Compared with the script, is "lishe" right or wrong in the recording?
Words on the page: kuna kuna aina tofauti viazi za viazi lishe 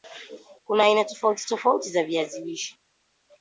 right